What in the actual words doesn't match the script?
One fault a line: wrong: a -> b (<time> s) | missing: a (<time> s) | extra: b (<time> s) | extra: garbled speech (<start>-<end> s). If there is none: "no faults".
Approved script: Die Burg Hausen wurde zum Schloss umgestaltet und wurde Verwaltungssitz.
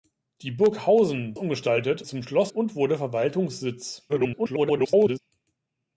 wrong: wurde -> umgestaltet (1.4 s)
missing: umgestaltet (2.5 s)
extra: garbled speech (4.1-5.2 s)